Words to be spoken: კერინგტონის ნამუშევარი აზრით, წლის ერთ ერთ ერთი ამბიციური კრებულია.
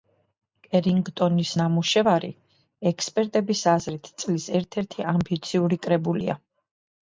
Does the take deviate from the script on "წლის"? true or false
false